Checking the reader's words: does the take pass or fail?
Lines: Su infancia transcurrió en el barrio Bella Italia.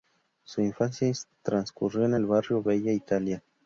pass